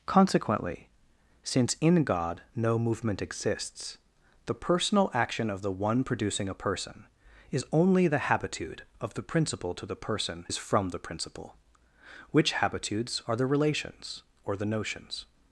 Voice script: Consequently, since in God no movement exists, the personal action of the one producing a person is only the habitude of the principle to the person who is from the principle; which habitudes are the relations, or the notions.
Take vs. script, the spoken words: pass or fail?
fail